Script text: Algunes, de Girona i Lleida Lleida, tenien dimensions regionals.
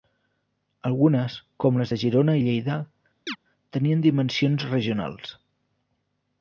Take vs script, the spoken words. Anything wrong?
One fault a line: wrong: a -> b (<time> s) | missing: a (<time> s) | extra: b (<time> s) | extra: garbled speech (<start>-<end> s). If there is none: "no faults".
extra: com les (1.6 s)
missing: Lleida (2.8 s)